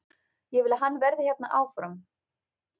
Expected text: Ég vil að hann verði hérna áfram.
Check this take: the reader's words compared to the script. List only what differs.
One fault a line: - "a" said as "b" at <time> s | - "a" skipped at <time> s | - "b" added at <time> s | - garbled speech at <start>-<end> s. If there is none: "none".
none